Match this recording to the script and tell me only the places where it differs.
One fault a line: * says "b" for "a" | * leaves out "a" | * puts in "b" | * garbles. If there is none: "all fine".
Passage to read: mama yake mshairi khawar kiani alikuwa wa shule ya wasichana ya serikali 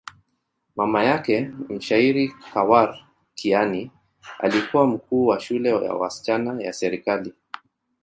* puts in "mkuu"